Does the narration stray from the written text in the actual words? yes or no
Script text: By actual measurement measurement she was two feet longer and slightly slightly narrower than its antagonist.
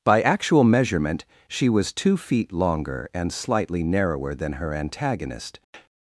yes